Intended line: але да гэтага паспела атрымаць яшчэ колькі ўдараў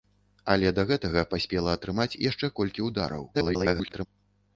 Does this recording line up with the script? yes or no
no